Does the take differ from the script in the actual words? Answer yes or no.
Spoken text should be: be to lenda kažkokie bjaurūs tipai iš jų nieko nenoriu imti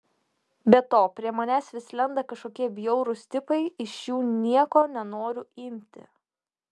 yes